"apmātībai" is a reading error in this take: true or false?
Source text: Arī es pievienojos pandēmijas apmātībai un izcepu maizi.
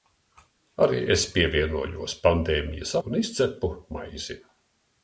true